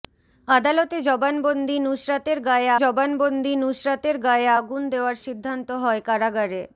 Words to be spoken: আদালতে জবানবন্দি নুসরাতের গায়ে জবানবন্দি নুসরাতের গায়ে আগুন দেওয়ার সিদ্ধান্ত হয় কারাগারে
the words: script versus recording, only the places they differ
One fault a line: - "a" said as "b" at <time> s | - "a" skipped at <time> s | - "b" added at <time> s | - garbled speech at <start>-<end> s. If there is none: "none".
none